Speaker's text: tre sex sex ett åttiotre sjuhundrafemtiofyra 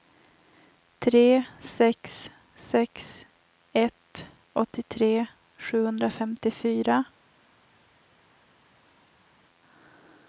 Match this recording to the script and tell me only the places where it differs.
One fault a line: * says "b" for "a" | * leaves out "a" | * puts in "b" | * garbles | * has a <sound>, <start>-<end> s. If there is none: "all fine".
all fine